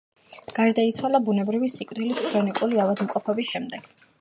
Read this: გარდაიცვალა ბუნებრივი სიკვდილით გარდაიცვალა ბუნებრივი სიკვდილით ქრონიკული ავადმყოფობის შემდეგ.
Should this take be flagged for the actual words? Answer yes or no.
yes